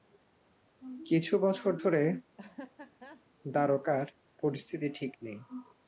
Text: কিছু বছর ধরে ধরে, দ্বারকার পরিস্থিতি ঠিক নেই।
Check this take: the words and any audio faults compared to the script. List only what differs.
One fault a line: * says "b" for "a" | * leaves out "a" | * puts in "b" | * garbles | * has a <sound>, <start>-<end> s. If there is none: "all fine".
* leaves out "ধরে"
* has a laugh, 2.4-3.2 s